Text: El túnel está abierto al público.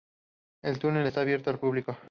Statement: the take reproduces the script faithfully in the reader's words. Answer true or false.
true